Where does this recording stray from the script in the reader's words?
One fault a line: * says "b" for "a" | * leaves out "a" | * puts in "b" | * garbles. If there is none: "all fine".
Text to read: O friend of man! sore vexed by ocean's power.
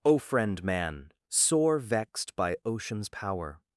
* leaves out "of"